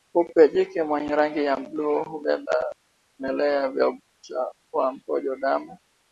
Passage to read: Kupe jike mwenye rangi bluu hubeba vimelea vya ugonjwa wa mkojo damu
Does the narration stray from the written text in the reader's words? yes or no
yes